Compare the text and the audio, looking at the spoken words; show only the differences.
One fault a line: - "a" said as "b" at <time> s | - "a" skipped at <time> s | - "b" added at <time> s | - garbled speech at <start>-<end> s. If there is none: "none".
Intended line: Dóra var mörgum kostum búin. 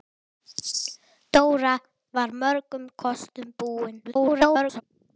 - garbled speech at 4.0-4.8 s